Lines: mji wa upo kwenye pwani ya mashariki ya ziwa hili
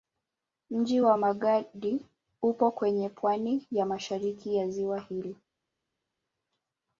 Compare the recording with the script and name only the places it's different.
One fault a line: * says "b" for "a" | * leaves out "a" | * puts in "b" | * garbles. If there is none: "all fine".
* puts in "magadi"